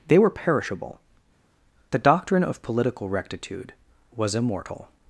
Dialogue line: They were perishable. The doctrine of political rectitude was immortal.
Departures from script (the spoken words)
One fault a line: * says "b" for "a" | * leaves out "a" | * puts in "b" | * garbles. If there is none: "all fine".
all fine